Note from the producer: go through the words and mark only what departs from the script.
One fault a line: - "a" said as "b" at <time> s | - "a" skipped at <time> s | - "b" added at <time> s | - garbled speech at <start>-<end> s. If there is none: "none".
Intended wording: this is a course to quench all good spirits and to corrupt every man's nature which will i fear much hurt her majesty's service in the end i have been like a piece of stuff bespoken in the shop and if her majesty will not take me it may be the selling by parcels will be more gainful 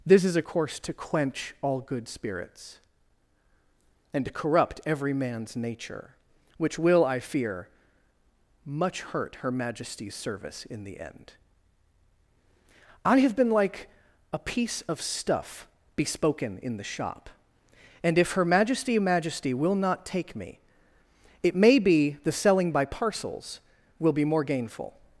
- "majesty" added at 19.0 s